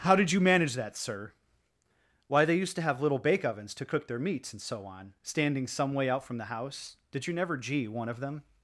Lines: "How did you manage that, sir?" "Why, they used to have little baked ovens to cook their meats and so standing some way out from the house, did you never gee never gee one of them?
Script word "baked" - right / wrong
wrong